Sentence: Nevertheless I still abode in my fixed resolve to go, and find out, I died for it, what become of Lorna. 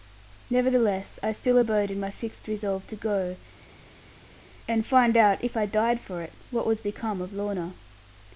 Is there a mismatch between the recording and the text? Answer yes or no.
yes